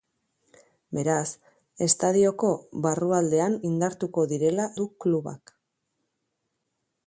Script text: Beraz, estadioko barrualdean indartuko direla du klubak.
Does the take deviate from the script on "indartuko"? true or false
false